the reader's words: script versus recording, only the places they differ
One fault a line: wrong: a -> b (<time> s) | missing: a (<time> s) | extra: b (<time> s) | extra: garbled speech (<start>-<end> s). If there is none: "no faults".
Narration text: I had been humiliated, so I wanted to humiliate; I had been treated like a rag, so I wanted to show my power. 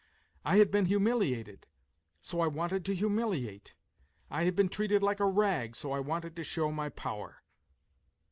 no faults